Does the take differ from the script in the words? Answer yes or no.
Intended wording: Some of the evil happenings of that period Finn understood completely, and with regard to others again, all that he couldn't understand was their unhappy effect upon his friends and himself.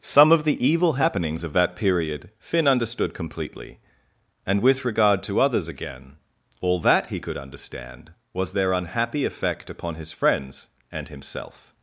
yes